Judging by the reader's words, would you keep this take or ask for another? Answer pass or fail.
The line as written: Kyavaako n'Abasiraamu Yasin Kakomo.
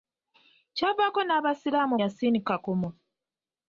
pass